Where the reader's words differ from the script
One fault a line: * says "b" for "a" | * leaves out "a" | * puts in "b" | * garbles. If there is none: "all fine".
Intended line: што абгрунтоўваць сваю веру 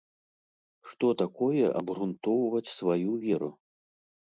* puts in "такое"